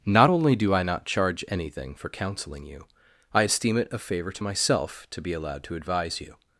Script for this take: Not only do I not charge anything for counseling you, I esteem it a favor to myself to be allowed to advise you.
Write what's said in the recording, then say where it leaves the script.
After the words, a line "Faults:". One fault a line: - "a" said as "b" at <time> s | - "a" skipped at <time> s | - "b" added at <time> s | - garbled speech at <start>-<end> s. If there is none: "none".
Not only do I not charge anything for counseling you, I esteem it a favor to myself to be allowed to advise you.
Faults:
none